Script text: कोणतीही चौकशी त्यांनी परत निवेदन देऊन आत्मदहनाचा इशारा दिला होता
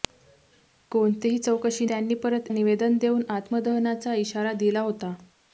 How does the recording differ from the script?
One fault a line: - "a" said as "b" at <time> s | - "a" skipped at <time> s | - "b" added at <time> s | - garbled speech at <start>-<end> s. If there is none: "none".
none